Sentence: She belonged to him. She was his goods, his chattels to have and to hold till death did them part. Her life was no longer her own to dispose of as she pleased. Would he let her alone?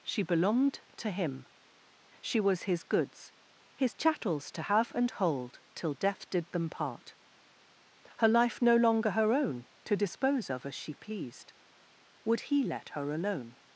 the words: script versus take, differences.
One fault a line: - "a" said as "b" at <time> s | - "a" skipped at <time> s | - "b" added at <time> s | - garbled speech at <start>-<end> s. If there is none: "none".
- "to" skipped at 5.1 s
- "was" skipped at 8.6 s